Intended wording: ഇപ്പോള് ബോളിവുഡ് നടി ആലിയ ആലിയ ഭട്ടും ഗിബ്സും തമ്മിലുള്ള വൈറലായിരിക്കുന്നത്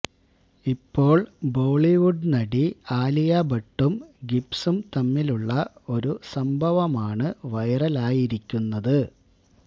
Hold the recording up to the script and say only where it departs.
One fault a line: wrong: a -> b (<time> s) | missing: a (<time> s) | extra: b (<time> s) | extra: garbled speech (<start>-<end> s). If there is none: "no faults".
missing: ആലിയ (3.4 s)
extra: ഒരു സംഭവമാണ് (5.9 s)